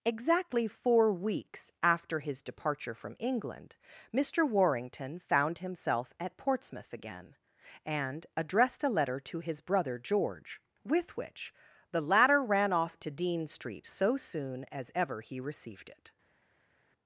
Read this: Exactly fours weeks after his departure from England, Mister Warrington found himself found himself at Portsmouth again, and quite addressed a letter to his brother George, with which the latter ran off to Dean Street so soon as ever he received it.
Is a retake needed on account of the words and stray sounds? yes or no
yes